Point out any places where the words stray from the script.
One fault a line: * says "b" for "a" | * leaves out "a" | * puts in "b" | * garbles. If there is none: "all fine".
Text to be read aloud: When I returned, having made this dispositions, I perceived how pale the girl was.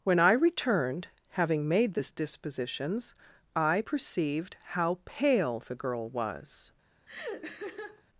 all fine